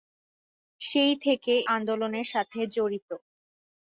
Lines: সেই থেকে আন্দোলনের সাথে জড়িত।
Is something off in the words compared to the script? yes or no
no